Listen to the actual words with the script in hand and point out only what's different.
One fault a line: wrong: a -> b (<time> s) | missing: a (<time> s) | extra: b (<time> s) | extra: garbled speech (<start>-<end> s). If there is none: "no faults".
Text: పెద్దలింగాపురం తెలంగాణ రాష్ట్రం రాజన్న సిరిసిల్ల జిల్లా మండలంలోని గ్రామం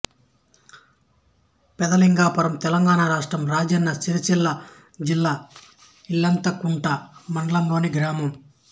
extra: ఇల్లంతకుంట (6.1 s)